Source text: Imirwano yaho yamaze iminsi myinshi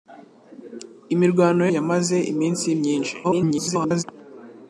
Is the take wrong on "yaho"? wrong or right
wrong